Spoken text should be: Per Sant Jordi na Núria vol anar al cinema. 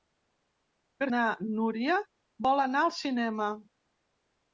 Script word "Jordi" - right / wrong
wrong